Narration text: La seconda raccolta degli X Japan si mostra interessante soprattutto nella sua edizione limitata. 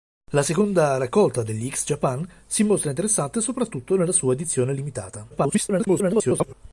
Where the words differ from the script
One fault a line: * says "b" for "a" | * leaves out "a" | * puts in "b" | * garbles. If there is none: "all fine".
* garbles